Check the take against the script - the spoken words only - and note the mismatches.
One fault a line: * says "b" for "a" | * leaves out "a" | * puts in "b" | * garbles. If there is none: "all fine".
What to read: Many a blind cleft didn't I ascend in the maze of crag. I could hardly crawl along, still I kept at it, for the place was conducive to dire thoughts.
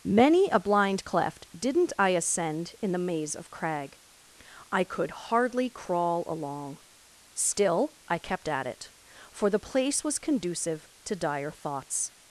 all fine